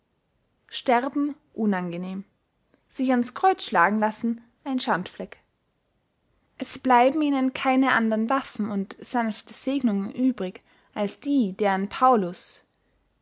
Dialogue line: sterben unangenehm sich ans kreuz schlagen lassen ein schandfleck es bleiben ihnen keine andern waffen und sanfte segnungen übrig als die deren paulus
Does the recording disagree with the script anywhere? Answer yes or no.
no